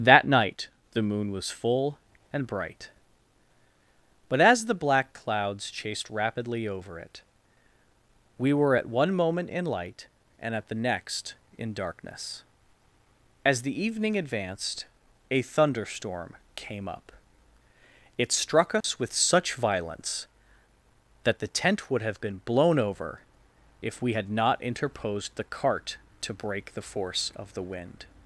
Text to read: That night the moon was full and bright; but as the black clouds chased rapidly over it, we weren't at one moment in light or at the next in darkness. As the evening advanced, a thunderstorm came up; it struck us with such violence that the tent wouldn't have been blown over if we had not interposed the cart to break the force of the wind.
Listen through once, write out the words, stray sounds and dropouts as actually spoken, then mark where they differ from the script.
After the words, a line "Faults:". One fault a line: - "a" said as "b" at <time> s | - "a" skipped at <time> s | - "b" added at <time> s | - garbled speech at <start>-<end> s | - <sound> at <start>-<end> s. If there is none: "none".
That night the moon was full and bright; but as the black clouds chased rapidly over it, we were at one moment in light and at the next in darkness. As the evening advanced, a thunderstorm came up; it struck us with such violence that the tent would have been blown over if we had not interposed the cart to break the force of the wind.
Faults:
- "weren't" said as "were" at 8.5 s
- "or" said as "and" at 10.4 s
- dropout at 18.8-18.8 s
- "wouldn't" said as "would" at 21.9 s